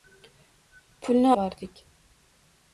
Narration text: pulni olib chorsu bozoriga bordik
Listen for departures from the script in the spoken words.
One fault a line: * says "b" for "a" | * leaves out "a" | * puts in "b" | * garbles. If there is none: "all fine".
* leaves out "olib chorsu bozoriga"